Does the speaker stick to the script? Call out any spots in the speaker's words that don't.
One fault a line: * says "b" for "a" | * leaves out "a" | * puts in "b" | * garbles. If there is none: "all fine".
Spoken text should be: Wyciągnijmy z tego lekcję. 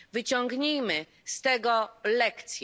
all fine